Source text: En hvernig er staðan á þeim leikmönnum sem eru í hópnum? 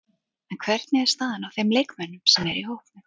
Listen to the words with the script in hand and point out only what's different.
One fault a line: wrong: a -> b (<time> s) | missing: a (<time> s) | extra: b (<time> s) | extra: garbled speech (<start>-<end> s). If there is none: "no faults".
no faults